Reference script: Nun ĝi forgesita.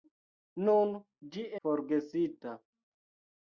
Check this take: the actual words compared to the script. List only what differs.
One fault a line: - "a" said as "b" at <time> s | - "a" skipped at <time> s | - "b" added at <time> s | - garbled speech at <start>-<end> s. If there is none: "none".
none